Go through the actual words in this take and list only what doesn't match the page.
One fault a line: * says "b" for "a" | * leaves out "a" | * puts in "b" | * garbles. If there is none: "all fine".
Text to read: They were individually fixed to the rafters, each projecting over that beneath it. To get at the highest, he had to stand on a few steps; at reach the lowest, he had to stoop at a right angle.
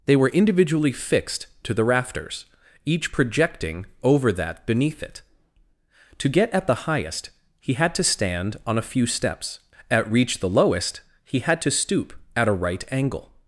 all fine